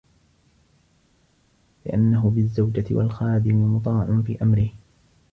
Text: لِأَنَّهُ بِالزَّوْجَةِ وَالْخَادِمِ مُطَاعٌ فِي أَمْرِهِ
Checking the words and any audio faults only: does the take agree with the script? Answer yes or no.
yes